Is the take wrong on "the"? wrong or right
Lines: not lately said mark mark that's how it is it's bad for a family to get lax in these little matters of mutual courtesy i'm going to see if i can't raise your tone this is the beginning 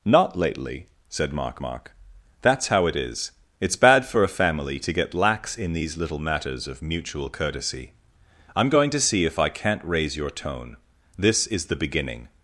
right